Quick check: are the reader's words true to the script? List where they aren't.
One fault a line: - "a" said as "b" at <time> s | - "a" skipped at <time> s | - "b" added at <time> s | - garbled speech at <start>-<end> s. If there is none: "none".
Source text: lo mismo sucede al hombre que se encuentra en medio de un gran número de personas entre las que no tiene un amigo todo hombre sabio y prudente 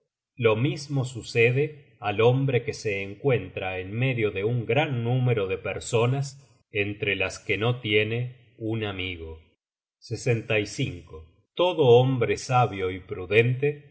none